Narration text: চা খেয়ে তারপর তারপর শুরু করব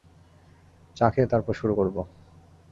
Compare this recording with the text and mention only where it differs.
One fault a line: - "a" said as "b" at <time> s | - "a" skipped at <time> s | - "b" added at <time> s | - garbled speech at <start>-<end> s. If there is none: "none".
- "তারপর" skipped at 1.5 s